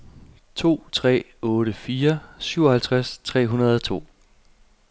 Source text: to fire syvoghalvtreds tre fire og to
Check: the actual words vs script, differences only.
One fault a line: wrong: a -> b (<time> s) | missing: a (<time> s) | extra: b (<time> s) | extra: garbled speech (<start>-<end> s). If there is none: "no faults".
extra: tre otte (0.9 s)
wrong: fire -> hundrede (3.5 s)